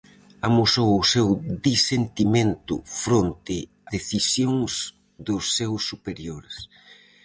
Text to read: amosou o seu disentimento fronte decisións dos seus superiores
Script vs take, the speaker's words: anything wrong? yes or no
no